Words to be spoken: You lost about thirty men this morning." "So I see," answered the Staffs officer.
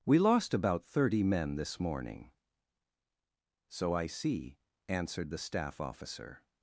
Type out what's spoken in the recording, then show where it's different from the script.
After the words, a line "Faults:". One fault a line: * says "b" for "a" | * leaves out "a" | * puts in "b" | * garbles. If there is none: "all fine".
We lost about thirty men this morning." "So I see," answered the Staff officer.
Faults:
* says "We" for "You"
* says "Staff" for "Staffs"